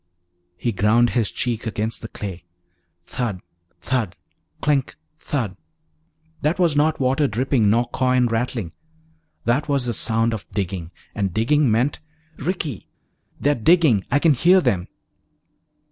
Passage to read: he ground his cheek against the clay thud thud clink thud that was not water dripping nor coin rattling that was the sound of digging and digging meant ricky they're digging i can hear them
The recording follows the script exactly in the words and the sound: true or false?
true